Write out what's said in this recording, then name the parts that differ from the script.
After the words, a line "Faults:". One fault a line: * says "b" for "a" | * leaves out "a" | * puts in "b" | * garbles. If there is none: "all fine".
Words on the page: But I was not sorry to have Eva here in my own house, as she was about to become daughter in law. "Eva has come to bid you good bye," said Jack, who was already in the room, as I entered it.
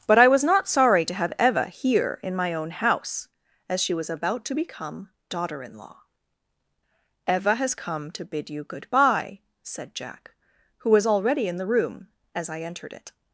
But I was not sorry to have Eva here in my own house, as she was about to become daughter in law. "Eva has come to bid you good bye," said Jack, who was already in the room, as I entered it.
Faults:
all fine